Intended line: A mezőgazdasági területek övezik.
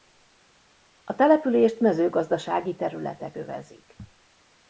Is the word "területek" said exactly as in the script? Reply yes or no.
yes